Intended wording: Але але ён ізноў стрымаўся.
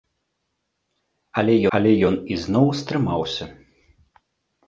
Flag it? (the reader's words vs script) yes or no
no